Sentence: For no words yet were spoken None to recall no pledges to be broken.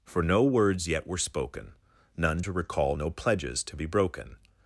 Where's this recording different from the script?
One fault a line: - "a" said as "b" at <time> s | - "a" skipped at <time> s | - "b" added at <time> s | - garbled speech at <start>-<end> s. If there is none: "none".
none